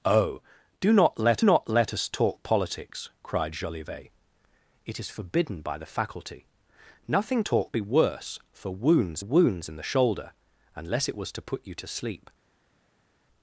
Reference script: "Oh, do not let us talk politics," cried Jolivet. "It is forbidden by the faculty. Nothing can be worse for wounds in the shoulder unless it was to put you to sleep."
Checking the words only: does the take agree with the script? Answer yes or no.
no